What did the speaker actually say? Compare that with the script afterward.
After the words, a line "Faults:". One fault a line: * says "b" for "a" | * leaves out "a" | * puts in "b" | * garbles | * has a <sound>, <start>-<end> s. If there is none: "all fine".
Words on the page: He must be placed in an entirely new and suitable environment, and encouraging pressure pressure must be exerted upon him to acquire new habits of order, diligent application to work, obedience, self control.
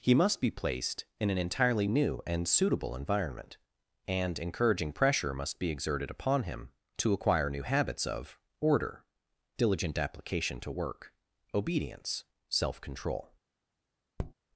He must be placed in an entirely new and suitable environment, and encouraging pressure must be exerted upon him to acquire new habits of order, diligent application to work, obedience, self control.
Faults:
* leaves out "pressure"
* has a tap, 14.2-14.3 s